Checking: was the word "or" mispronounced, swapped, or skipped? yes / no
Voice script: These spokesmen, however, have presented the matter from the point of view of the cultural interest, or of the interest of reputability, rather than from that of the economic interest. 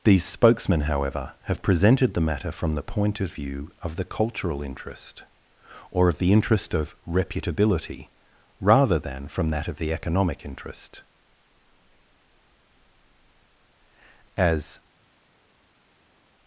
no